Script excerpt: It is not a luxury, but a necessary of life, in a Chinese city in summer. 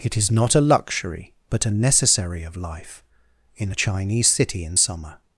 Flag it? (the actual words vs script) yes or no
no